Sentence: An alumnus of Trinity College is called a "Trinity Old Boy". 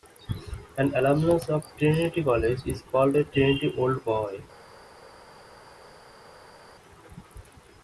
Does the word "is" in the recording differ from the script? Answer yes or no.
no